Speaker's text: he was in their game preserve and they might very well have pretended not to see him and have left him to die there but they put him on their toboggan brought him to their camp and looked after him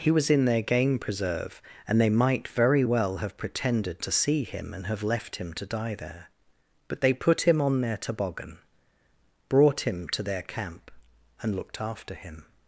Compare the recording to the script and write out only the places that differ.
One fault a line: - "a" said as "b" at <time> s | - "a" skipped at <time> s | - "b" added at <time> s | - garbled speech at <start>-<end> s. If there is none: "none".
- "not" skipped at 4.0 s